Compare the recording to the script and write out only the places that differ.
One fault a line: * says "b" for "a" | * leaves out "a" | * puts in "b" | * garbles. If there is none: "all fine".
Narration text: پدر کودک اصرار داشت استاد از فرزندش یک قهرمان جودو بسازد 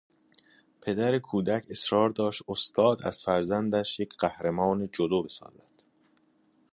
all fine